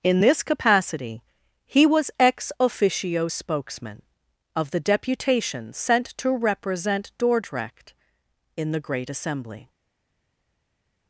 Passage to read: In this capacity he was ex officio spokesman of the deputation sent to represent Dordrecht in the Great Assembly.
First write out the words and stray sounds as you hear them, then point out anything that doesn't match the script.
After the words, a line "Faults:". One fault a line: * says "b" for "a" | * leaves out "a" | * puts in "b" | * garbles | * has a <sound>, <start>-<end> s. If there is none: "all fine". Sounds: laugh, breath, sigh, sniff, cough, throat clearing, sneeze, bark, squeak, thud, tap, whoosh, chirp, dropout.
In this capacity he was ex officio spokesman of the deputation sent to represent Dordrecht in the Great Assembly.
Faults:
all fine